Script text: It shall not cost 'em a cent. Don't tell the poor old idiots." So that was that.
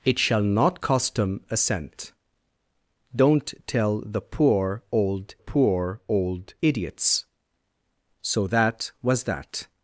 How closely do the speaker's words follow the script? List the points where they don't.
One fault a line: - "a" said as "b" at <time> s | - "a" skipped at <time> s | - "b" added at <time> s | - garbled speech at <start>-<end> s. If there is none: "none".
- "poor old" added at 5.4 s